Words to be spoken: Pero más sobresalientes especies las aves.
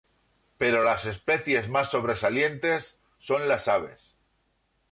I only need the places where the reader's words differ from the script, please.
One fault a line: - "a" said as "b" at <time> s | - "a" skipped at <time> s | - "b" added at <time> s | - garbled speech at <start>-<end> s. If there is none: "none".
- "las especies" added at 0.8 s
- "especies" said as "son" at 3.2 s